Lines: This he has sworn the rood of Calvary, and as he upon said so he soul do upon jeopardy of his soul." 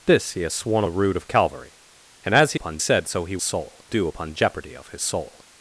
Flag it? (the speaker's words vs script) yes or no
no